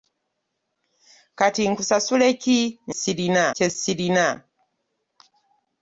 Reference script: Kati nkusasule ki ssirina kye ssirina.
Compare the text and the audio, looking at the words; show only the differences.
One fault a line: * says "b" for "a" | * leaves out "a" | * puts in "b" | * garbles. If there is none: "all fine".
all fine